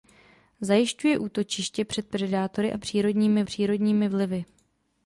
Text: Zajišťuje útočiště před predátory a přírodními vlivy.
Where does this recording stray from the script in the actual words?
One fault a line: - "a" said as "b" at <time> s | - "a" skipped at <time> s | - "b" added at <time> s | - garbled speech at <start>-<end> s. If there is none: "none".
- "přírodními" added at 3.4 s